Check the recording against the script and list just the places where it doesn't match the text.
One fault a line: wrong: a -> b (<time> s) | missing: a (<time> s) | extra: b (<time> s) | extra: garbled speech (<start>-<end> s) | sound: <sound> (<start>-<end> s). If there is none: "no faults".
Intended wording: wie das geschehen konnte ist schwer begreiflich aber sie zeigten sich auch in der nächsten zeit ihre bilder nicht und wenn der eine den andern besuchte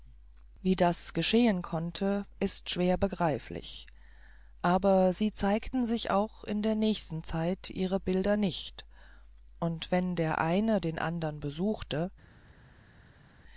no faults